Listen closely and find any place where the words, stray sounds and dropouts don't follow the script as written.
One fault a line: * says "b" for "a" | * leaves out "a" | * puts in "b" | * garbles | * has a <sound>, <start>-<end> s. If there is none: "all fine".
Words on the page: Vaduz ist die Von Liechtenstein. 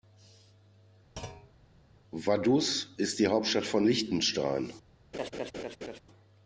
* has a thud, 1.2-1.5 s
* puts in "Hauptstadt"
* has a laugh, 5.1-6.0 s